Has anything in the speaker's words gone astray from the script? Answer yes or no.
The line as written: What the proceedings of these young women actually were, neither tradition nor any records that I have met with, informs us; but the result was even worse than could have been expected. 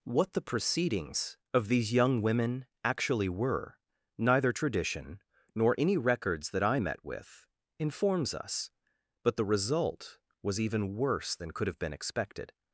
yes